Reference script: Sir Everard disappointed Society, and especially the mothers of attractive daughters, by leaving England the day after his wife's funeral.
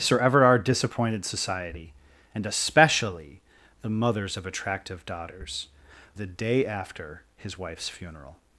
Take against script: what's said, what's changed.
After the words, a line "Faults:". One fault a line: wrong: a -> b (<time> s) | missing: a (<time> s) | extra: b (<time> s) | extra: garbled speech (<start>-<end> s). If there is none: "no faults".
Sir Everard disappointed Society, and especially the mothers of attractive daughters, the day after his wife's funeral.
Faults:
missing: by leaving England (5.7 s)